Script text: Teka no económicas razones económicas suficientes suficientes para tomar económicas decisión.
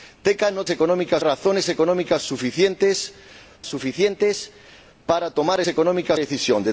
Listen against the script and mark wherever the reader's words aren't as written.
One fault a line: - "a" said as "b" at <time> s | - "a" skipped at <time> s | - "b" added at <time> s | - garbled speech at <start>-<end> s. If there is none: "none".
none